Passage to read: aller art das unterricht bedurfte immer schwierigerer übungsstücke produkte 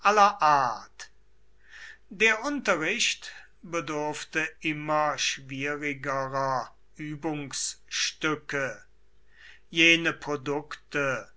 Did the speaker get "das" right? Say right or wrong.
wrong